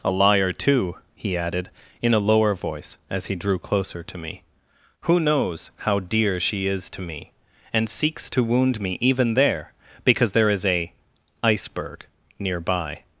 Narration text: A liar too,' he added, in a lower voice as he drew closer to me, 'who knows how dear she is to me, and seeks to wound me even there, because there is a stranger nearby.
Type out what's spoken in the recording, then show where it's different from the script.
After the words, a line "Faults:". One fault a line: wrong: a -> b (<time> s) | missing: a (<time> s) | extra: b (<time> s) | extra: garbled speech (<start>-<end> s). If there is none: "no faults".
A liar too,' he added, in a lower voice as he drew closer to me, 'who knows how dear she is to me, and seeks to wound me even there, because there is a iceberg nearby.
Faults:
wrong: stranger -> iceberg (11.4 s)